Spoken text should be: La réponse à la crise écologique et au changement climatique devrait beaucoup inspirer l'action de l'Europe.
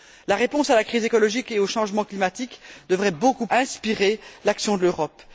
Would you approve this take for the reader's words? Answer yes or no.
yes